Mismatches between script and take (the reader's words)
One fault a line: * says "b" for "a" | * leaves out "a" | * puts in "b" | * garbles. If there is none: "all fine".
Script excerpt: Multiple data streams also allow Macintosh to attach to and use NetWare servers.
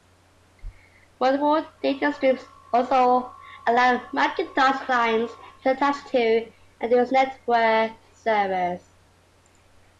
* puts in "clients"